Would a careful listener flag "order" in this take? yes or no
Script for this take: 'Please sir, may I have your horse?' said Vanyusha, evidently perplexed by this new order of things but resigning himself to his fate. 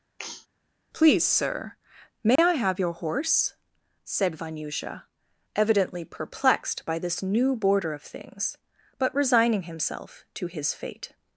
yes